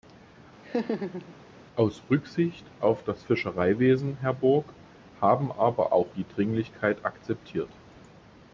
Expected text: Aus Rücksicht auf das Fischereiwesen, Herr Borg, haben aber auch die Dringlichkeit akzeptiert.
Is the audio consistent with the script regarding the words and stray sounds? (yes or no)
no